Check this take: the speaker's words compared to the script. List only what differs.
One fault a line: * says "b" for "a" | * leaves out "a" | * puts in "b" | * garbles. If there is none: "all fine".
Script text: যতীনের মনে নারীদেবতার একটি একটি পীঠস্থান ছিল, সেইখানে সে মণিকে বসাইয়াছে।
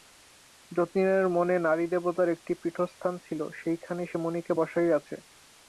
* leaves out "একটি"